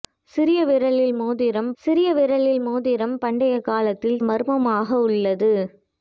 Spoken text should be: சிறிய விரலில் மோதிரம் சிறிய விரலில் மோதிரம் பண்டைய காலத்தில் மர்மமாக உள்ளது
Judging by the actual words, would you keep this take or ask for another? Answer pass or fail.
pass